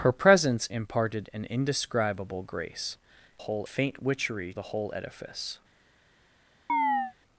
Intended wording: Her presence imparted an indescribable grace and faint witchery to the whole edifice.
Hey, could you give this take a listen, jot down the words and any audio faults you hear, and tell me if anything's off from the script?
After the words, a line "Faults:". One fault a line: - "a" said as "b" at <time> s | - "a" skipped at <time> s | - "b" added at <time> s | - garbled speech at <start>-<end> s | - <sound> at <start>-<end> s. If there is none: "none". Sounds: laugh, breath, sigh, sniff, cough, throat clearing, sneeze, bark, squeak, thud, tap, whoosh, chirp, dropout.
Her presence imparted an indescribable grace whole faint witchery the whole edifice.
Faults:
- "and" said as "whole" at 3.4 s
- "to" skipped at 4.5 s
- chirp at 6.7-7.1 s